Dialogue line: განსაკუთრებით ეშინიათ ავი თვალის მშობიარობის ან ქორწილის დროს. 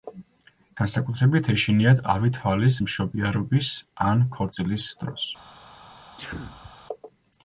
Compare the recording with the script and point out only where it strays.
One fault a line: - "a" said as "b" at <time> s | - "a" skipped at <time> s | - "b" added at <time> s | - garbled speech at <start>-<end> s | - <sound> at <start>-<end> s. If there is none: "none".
- sneeze at 6.2-6.7 s